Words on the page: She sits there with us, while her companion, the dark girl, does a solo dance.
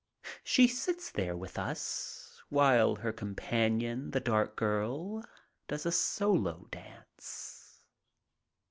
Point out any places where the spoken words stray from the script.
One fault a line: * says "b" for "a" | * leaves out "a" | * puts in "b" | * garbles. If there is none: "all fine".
all fine